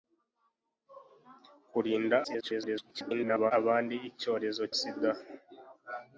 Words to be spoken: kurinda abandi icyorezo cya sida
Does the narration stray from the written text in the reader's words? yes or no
yes